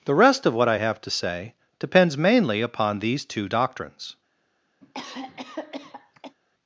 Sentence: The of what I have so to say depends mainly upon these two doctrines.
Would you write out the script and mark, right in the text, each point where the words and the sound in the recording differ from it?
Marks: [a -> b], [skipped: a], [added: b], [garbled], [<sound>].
The [added: rest] of what I have [skipped: so] to say depends mainly upon these two doctrines. [cough]